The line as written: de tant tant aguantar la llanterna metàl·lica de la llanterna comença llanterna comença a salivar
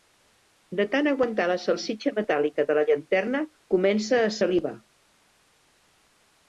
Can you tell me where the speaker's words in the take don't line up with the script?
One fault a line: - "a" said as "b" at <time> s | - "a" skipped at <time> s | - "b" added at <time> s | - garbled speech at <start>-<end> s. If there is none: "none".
- "tant" skipped at 1.1 s
- "llanterna" said as "salsitxa" at 1.7 s
- "llanterna comença" skipped at 4.2 s